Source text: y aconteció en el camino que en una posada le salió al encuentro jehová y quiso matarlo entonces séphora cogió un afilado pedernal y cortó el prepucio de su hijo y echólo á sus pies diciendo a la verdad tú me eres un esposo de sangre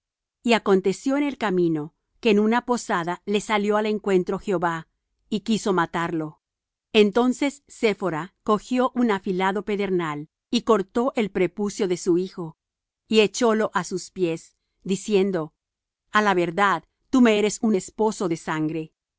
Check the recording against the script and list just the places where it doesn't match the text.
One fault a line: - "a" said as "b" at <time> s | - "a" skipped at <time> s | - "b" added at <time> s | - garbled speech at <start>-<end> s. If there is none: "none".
none